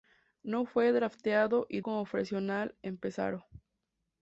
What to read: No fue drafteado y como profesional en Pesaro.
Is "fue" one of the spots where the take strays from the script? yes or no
no